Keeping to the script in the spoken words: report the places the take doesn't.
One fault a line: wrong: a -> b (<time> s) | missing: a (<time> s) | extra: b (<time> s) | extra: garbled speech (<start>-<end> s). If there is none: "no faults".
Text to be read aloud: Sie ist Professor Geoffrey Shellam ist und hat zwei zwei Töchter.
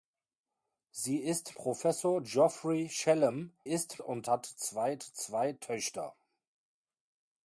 no faults